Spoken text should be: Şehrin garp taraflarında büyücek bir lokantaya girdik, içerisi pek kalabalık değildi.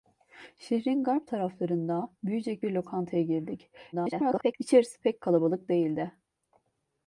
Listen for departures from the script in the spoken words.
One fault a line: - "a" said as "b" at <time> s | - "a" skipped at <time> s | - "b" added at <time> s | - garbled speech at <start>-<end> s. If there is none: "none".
- garbled speech at 3.9-4.5 s